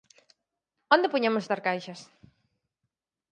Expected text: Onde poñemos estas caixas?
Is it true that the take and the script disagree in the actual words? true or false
false